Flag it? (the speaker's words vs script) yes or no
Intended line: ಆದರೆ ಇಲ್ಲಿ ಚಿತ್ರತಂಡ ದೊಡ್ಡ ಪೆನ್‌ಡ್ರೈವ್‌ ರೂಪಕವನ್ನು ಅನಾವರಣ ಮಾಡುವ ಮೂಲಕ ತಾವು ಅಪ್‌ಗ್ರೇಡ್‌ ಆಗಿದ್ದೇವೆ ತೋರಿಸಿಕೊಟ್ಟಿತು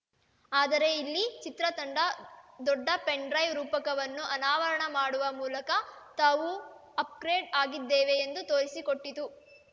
yes